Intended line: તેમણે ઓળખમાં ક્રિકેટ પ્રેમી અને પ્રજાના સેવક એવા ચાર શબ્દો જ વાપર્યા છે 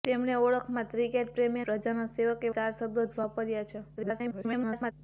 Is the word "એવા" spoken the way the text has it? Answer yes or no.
no